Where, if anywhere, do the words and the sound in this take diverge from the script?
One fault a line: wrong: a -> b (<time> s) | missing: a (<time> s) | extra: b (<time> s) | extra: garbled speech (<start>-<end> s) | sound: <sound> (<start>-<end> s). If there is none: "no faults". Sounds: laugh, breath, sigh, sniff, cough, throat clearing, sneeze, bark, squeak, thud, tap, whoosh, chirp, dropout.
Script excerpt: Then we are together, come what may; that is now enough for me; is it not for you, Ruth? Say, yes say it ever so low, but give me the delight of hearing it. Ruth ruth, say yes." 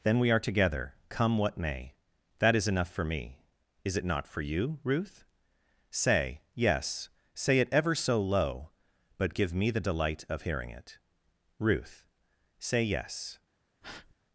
missing: now (2.7 s)
missing: ruth (12.1 s)
sound: breath (13.8-14.1 s)